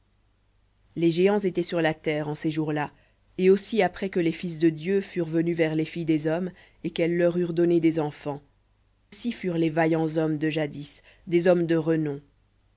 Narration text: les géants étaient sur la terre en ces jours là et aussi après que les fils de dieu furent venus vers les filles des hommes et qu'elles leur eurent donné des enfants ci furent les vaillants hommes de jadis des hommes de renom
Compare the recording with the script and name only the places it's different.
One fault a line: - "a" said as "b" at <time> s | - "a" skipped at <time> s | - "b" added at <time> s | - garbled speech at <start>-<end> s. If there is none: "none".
none